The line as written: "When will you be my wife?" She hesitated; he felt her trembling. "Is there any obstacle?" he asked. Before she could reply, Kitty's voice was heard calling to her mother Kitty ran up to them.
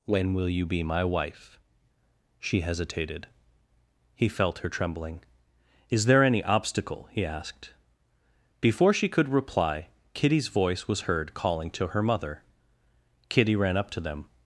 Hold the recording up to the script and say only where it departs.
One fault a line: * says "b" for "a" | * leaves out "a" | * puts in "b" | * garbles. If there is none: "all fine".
all fine